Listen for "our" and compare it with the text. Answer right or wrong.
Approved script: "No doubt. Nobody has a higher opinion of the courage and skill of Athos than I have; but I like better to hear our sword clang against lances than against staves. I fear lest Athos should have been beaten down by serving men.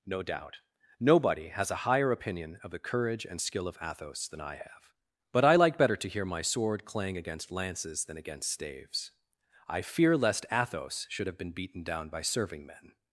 wrong